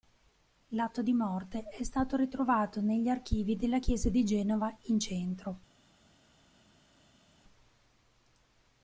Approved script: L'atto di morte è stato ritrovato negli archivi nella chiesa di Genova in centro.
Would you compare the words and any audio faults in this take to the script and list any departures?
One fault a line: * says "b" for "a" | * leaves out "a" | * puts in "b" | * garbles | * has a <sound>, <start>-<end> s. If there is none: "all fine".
* says "della" for "nella"